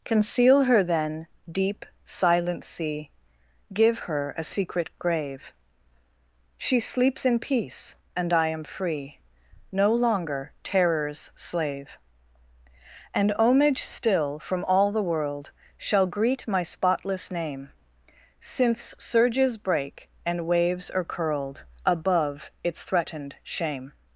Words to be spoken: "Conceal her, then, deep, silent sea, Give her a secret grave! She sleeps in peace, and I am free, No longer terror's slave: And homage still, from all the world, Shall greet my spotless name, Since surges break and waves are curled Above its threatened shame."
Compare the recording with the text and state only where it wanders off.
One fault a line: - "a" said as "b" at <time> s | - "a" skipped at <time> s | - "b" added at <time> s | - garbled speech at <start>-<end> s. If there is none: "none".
none